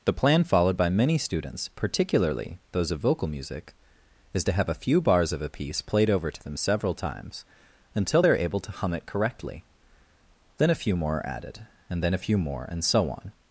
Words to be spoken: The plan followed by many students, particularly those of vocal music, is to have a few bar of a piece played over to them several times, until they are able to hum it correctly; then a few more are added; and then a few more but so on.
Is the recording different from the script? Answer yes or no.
yes